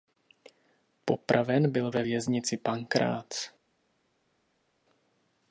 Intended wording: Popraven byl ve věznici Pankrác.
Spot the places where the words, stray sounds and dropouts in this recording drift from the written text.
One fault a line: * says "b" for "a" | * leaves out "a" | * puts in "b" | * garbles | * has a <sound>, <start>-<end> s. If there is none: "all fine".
all fine